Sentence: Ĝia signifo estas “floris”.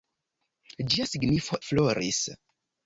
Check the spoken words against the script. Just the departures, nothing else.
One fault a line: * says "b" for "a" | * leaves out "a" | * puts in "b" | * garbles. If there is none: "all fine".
* leaves out "estas"